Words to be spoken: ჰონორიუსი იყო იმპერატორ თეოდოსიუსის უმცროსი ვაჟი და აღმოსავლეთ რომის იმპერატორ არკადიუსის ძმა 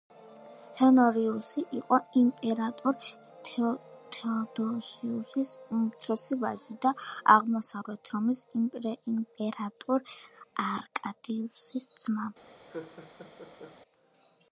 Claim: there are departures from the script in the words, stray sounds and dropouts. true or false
true